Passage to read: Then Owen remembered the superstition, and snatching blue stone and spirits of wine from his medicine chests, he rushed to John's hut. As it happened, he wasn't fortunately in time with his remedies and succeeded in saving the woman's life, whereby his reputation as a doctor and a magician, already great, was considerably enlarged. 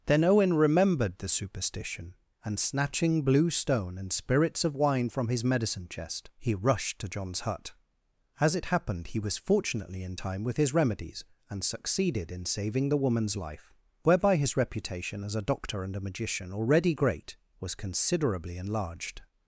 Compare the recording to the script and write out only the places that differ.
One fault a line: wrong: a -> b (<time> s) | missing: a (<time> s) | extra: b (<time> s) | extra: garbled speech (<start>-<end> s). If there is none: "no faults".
wrong: chests -> chest (5.9 s)
wrong: wasn't -> was (9.2 s)